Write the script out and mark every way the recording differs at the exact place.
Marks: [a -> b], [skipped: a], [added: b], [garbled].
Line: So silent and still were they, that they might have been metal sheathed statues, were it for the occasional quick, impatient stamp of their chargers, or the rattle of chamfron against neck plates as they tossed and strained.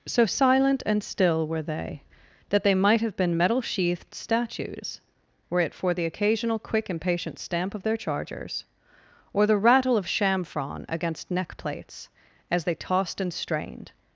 So silent and still were they, that they might have been metal sheathed statues, were it for the occasional quick, impatient stamp of their chargers, or the rattle of chamfron against neck plates as they tossed and strained.